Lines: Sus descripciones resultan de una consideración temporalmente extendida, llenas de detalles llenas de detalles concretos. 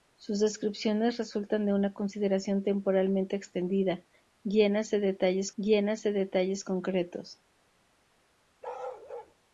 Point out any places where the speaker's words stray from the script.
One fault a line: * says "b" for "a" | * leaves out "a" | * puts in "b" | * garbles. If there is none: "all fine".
all fine